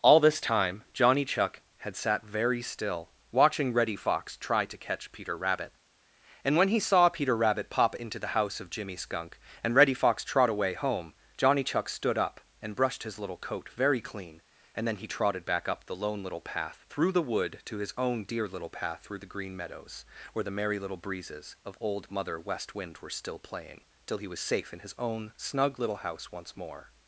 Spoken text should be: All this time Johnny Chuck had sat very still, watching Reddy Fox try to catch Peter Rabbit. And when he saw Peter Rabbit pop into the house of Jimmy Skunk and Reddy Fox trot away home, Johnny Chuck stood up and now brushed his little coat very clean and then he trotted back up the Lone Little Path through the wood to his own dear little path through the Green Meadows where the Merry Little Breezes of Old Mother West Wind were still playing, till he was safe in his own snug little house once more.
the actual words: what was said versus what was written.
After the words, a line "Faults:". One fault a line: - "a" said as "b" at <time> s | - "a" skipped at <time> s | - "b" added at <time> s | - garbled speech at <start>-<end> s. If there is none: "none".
All this time Johnny Chuck had sat very still, watching Reddy Fox try to catch Peter Rabbit. And when he saw Peter Rabbit pop into the house of Jimmy Skunk and Reddy Fox trot away home, Johnny Chuck stood up and brushed his little coat very clean and then he trotted back up the Lone Little Path through the wood to his own dear little path through the Green Meadows where the Merry Little Breezes of Old Mother West Wind were still playing, till he was safe in his own snug little house once more.
Faults:
- "now" skipped at 12.8 s